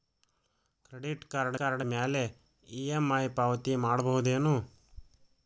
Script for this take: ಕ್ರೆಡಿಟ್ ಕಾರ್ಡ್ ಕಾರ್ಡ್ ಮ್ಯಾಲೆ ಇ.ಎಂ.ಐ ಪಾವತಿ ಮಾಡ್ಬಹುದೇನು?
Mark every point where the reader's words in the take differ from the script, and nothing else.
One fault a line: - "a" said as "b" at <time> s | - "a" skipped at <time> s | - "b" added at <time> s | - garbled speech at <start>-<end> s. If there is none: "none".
none